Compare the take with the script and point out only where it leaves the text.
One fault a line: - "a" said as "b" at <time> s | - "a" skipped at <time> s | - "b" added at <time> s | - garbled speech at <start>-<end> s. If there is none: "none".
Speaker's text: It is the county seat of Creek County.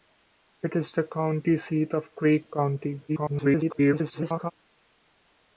- garbled speech at 3.1-4.5 s